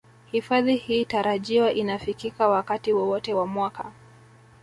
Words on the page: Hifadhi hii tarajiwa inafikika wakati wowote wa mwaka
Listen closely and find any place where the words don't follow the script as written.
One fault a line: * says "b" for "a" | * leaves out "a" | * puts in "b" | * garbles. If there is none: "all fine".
all fine